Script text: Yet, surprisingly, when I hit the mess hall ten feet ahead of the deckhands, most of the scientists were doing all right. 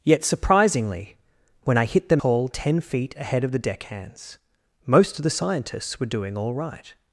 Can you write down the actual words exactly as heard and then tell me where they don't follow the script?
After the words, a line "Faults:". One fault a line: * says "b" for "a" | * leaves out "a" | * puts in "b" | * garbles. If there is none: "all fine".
Yet, surprisingly, when I hit the hall ten feet ahead of the deckhands, most of the scientists were doing all right.
Faults:
* leaves out "mess"